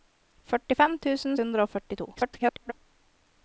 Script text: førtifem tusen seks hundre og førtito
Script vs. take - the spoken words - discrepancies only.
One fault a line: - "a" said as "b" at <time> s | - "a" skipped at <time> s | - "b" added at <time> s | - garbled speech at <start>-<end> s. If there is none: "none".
- "seks" skipped at 1.4 s
- garbled speech at 2.1-2.7 s